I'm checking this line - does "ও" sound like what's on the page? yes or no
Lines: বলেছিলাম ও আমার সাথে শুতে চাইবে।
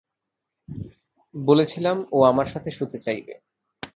yes